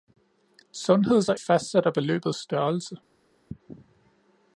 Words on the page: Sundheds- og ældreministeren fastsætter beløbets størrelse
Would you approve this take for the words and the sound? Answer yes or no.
no